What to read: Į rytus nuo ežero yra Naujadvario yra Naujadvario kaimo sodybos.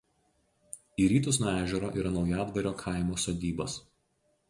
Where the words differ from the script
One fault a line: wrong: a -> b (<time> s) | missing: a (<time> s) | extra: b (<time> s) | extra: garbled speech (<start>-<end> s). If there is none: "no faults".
missing: yra Naujadvario (2.7 s)